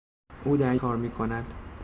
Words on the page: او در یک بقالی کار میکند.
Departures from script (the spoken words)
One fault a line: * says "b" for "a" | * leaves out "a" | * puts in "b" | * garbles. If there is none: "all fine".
* leaves out "یک بقالی"